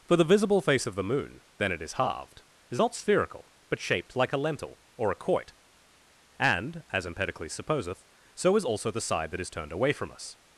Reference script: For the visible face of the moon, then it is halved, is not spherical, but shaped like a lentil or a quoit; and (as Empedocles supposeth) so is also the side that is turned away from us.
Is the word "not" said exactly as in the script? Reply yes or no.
yes